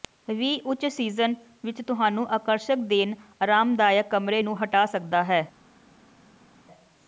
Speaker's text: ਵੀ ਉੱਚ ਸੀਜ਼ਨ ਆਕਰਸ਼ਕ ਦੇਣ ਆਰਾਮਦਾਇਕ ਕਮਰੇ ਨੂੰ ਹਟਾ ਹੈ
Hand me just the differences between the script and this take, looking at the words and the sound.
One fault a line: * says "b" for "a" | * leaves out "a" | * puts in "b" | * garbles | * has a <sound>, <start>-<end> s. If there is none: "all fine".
* puts in "ਵਿੱਚ ਤੁਹਾਨੂੰ"
* puts in "ਸਕਦਾ"